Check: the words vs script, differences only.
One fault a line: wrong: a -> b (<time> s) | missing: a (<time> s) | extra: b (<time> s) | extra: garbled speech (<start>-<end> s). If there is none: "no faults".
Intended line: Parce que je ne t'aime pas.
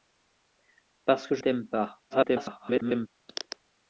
missing: ne (1.4 s)
extra: garbled speech (2.1-3.1 s)